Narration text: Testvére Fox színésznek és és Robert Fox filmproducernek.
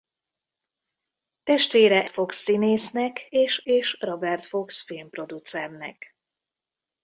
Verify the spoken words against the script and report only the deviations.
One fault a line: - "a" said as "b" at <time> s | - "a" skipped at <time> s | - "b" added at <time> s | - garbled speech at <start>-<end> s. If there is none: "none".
none